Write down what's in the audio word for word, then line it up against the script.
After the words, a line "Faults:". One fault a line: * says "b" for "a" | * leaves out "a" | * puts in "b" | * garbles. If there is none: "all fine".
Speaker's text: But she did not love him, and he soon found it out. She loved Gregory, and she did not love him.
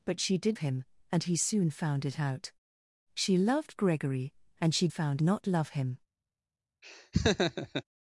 But she did him, and he soon found it out. She loved Gregory, and she found not love him.
Faults:
* leaves out "not love"
* says "found" for "did"